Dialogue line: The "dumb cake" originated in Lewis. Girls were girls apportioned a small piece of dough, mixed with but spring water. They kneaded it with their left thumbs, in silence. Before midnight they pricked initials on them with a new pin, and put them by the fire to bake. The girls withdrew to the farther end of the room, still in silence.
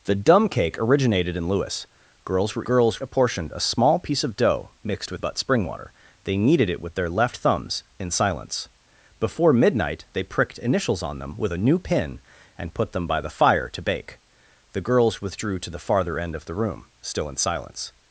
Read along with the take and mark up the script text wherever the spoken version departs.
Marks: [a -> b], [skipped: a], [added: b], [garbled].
The "dumb cake" originated in Lewis. Girls were girls apportioned a small piece of dough, mixed with but spring water. They kneaded it with their left thumbs, in silence. Before midnight they pricked initials on them with a new pin, and put them by the fire to bake. The girls withdrew to the farther end of the room, still in silence.